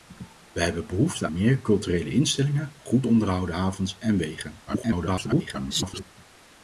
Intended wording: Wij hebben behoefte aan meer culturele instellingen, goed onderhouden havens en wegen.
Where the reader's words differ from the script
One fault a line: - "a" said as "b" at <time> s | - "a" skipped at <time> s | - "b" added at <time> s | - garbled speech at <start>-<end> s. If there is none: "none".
- "aan" skipped at 1.3 s
- garbled speech at 4.7-6.0 s